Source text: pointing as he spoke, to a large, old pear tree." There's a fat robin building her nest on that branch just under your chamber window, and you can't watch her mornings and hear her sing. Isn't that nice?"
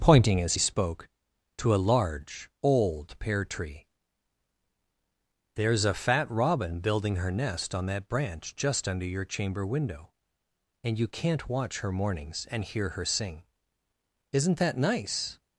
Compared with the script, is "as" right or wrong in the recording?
right